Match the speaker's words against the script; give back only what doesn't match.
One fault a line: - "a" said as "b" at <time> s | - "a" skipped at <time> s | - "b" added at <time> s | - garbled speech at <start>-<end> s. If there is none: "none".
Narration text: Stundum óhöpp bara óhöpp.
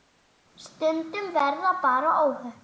- "óhöpp" said as "verða" at 1.4 s